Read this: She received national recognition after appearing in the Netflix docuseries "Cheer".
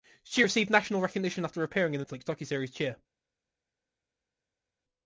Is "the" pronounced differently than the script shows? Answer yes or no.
yes